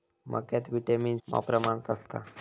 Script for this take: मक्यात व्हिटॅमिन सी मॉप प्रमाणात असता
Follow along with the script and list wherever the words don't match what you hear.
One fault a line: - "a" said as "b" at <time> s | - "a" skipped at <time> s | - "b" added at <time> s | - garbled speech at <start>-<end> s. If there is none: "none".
- "सी" skipped at 1.2 s